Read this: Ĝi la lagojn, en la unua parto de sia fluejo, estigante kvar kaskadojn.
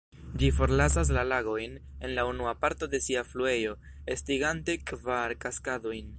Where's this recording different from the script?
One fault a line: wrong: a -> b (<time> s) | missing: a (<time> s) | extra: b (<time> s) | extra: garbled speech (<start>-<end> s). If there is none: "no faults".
extra: forlasas (0.6 s)